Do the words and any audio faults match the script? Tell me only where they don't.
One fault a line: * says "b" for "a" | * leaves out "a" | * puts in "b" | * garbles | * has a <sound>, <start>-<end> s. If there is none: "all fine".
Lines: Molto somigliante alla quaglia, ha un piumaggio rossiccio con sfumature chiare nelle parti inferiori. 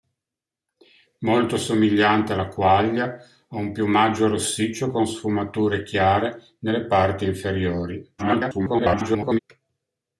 * garbles